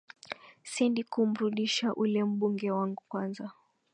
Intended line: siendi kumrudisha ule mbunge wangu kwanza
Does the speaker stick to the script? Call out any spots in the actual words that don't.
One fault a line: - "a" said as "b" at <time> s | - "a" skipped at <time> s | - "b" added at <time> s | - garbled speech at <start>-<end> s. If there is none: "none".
none